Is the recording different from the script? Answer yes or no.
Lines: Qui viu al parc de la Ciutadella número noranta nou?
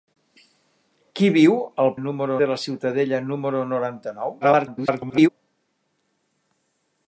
yes